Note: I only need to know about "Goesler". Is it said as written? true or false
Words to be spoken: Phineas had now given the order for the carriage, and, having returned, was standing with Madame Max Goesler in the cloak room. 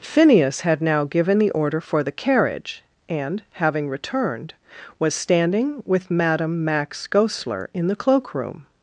true